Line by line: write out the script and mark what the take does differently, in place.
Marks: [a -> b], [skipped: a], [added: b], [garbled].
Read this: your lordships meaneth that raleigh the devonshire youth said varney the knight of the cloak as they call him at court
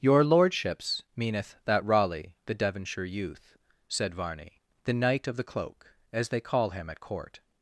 your lordships meaneth that raleigh the devonshire youth said varney the knight of the cloak as they call him at court